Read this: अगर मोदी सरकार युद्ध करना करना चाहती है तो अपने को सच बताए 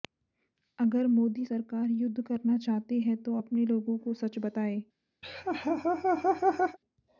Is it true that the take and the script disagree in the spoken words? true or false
true